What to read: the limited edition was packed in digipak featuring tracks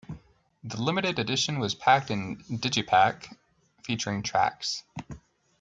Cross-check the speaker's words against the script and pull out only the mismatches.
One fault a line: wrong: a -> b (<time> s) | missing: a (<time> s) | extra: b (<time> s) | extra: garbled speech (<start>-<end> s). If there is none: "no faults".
no faults